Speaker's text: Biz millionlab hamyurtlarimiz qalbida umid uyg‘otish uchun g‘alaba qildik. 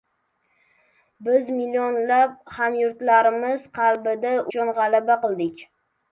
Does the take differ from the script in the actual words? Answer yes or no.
yes